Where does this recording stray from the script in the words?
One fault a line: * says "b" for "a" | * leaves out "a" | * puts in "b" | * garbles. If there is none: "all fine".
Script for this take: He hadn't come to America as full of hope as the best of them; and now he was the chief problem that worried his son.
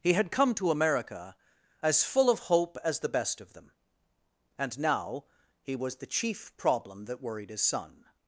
* says "had" for "hadn't"